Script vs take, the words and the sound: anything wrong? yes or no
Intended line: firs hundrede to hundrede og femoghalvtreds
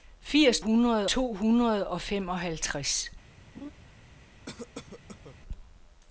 yes